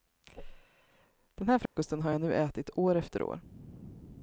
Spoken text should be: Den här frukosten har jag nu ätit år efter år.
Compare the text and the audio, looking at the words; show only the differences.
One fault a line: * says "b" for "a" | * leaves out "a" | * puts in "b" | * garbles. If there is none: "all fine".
all fine